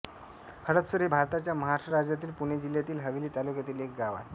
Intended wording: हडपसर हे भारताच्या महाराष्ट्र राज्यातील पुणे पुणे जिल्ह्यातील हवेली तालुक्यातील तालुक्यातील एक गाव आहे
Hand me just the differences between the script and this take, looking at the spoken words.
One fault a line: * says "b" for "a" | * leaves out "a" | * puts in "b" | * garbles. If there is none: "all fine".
* leaves out "पुणे"
* leaves out "तालुक्यातील"